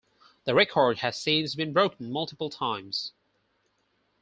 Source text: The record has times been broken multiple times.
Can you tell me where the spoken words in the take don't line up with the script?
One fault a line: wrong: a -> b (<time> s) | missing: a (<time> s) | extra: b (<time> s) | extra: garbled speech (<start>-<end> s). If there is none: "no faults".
wrong: times -> since (1.1 s)